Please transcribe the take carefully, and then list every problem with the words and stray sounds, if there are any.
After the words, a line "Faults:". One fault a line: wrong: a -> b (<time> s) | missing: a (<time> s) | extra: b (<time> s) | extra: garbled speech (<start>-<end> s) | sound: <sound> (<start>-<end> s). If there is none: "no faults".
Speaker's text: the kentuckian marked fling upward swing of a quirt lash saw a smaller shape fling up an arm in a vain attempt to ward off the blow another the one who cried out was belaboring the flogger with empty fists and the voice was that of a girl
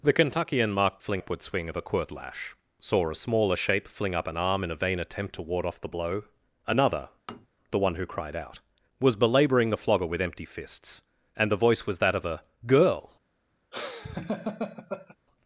the kentuckian marked fling upward swing of a quirt lash saw a smaller shape fling up an arm in a vain attempt to ward off the blow another the one who cried out was belaboring the flogger with empty fists and the voice was that of a girl
Faults:
sound: tap (7.3-7.5 s)
sound: laugh (13.7-15.2 s)